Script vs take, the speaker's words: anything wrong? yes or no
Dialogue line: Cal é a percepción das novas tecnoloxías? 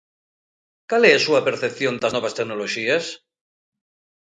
yes